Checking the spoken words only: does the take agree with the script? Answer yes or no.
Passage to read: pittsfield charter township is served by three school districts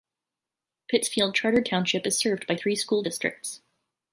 yes